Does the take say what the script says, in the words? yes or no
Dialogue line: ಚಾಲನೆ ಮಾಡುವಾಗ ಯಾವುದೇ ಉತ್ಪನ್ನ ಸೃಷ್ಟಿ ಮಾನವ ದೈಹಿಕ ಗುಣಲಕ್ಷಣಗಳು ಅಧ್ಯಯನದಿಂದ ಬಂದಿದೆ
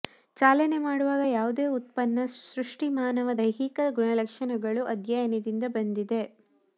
yes